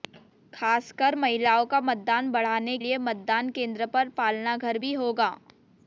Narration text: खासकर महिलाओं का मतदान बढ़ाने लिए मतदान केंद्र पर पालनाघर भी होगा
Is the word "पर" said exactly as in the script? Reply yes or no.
yes